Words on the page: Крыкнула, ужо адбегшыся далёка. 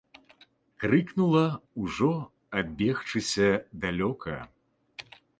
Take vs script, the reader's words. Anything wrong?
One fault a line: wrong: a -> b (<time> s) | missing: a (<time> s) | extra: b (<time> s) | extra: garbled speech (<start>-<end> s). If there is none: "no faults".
no faults